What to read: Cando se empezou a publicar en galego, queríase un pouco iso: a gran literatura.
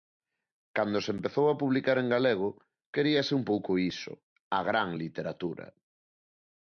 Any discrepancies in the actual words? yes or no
no